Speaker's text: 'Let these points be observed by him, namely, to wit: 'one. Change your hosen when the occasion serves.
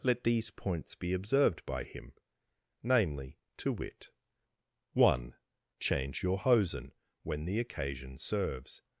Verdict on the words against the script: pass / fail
pass